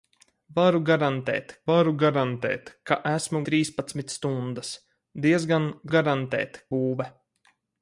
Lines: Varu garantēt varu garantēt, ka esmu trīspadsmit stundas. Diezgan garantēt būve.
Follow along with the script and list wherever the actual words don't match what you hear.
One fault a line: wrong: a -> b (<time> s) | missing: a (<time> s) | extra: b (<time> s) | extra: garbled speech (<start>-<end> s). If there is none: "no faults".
no faults